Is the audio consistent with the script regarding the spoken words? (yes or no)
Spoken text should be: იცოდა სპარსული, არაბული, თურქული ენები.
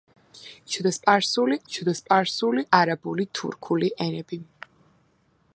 no